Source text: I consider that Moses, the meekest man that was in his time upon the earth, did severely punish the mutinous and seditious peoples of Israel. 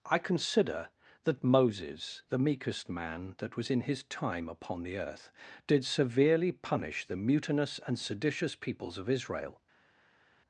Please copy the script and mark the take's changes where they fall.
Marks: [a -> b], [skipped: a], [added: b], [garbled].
I consider that Moses, the meekest man that was in his time upon the earth, did severely punish the mutinous and seditious peoples of Israel.